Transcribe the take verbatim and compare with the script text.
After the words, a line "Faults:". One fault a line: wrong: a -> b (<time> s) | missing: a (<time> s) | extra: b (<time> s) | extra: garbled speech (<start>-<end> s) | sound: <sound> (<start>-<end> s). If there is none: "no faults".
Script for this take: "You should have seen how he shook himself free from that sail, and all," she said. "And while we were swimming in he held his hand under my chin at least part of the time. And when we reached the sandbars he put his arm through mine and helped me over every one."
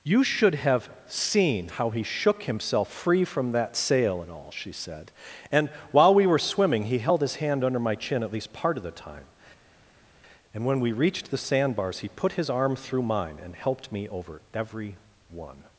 "You should have seen how he shook himself free from that sail, and all," she said. "And while we were swimming he held his hand under my chin at least part of the time. And when we reached the sandbars he put his arm through mine and helped me over every one."
Faults:
missing: in (6.8 s)